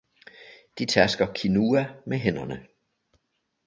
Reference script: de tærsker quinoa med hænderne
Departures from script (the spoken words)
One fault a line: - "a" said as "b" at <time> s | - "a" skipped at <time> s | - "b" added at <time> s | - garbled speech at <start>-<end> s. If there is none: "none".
none